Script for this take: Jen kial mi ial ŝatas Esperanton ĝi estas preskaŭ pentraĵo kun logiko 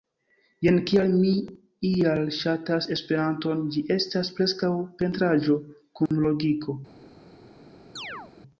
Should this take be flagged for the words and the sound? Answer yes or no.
yes